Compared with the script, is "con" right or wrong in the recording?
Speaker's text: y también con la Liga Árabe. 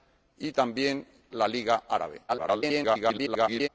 wrong